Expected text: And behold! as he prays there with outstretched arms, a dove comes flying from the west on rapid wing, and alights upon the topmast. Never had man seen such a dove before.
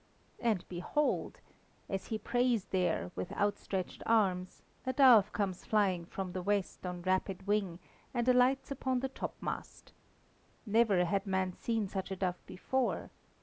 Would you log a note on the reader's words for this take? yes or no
no